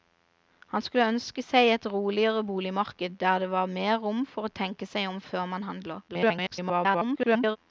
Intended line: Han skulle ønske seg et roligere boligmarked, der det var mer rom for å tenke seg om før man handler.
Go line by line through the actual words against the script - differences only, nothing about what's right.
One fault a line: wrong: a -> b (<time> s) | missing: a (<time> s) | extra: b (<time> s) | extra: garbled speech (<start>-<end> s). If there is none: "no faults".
extra: garbled speech (6.1-7.6 s)